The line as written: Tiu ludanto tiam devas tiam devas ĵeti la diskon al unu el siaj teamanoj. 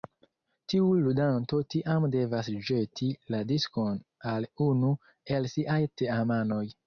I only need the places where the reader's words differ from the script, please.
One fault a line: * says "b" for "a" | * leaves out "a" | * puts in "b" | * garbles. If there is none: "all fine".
* leaves out "tiam devas"